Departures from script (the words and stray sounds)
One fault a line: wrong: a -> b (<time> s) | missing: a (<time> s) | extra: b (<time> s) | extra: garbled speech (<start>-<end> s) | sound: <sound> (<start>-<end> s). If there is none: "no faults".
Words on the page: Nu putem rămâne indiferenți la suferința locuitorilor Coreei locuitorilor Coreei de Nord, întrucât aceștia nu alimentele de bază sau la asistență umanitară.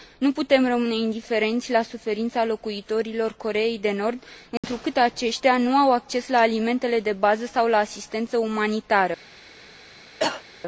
missing: locuitorilor Coreei (3.8 s)
sound: dropout (4.6-4.6 s)
extra: au acces la (5.8 s)
sound: cough (10.2-10.4 s)